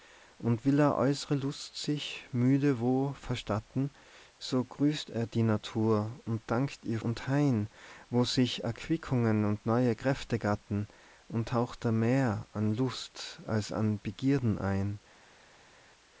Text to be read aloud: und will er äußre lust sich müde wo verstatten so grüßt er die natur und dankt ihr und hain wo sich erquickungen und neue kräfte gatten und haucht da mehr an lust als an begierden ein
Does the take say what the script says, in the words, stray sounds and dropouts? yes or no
yes